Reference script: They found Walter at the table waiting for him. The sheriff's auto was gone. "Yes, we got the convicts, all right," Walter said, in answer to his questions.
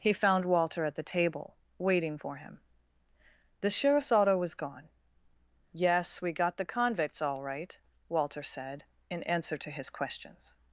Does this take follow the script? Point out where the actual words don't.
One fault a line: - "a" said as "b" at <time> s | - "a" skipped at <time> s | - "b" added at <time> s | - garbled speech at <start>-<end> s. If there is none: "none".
- "They" said as "He" at 0.0 s